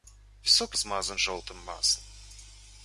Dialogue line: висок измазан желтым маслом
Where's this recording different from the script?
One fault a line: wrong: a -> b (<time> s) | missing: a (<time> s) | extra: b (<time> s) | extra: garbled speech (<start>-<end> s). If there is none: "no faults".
no faults